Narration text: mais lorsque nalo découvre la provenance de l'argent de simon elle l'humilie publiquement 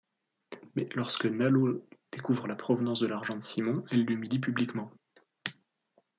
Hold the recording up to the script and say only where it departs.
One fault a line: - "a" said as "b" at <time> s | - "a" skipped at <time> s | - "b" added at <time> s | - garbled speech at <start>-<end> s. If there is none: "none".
none